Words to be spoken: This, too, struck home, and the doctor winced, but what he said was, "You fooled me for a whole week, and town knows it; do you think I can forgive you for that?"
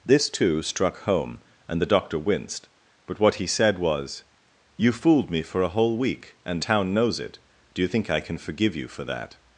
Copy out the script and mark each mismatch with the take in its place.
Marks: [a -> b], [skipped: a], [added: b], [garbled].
This, too, struck home, and the doctor winced, but what he said was, "You fooled me for a whole week, and town knows it; do you think I can forgive you for that?"